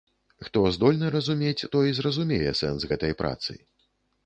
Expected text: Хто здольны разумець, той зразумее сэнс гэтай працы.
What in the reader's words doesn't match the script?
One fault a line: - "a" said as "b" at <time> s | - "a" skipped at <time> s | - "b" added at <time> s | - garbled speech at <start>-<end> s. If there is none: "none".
none